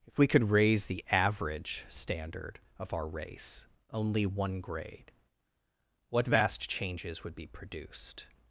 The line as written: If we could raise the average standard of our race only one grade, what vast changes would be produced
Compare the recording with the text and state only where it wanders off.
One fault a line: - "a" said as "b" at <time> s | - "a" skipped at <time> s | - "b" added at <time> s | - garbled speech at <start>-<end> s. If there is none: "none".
none